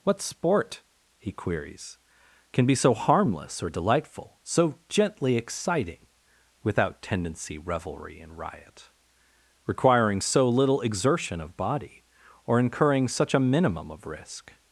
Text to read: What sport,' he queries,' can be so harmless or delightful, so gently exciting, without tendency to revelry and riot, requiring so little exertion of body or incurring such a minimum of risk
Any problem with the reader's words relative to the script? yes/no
yes